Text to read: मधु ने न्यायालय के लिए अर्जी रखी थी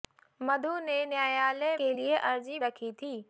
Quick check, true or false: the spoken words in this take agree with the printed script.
true